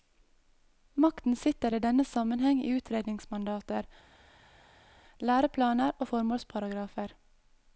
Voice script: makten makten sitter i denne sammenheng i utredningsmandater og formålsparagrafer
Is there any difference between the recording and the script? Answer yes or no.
yes